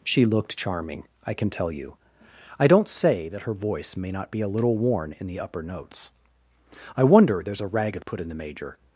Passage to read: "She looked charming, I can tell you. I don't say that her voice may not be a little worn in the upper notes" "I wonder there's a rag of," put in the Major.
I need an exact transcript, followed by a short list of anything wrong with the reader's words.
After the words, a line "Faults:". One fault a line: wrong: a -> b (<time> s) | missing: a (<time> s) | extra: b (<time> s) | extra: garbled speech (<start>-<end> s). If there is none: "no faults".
"She looked charming, I can tell you. I don't say that her voice may not be a little worn in the upper notes" "I wonder there's a rag of," put in the Major.
Faults:
no faults